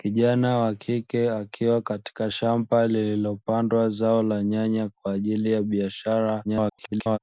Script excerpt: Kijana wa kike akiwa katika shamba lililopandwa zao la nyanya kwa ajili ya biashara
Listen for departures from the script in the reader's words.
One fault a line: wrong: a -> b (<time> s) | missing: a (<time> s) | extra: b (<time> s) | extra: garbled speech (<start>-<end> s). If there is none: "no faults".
extra: garbled speech (6.4-7.2 s)